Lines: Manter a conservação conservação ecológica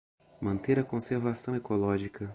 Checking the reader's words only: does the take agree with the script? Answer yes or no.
no